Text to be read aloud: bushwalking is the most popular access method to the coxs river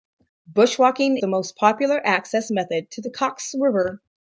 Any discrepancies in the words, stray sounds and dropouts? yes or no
yes